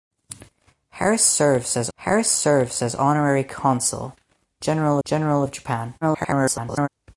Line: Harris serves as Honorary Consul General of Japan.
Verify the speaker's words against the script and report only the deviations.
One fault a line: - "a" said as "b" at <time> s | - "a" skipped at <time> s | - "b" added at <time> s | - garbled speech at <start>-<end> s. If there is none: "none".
- "harris serves as" added at 1.9 s
- "General" added at 5.0 s
- garbled speech at 6.0-6.9 s